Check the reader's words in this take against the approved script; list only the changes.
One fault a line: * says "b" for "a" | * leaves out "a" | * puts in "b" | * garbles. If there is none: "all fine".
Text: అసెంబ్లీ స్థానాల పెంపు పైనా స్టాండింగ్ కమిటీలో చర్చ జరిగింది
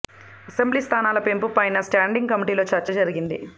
all fine